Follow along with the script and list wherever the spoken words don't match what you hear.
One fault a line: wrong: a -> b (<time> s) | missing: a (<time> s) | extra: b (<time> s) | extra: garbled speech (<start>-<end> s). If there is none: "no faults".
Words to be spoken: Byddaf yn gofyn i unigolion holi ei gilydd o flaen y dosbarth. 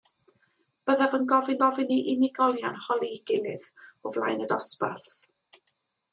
extra: gofyn (1.6 s)